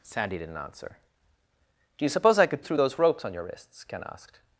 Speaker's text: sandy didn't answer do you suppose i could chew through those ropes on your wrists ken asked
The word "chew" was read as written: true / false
false